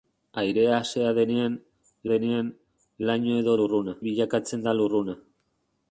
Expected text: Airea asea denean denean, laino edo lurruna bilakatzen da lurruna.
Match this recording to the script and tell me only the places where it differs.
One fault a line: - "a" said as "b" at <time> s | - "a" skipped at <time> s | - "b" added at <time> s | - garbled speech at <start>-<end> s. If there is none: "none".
none